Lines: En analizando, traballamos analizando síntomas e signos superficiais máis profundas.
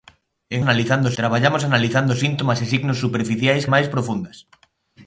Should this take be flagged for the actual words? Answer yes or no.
no